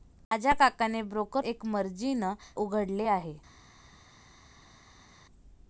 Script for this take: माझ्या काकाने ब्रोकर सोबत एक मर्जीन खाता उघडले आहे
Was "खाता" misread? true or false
true